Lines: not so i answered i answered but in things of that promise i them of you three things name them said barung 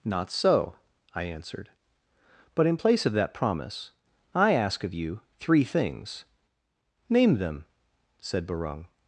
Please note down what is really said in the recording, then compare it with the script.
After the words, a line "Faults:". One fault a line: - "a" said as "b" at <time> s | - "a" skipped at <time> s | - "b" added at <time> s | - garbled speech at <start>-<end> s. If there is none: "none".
not so i answered but in place of that promise i ask of you three things name them said barung
Faults:
- "i answered" skipped at 1.7 s
- "things" said as "place" at 2.7 s
- "them" said as "ask" at 4.5 s